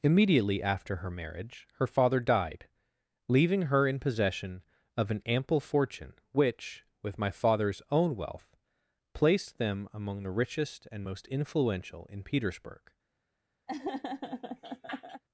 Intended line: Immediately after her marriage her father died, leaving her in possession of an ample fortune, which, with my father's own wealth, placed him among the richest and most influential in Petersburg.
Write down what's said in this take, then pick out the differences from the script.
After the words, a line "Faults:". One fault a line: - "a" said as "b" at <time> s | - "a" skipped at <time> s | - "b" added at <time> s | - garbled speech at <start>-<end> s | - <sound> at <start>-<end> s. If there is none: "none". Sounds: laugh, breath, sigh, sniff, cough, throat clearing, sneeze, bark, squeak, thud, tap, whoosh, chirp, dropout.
Immediately after her marriage her father died, leaving her in possession of an ample fortune, which, with my father's own wealth, placed them among the richest and most influential in Petersburg.
Faults:
- "him" said as "them" at 9.6 s
- laugh at 13.7-15.2 s